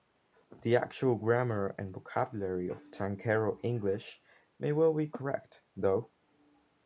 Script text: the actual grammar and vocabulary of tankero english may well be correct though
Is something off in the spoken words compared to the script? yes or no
no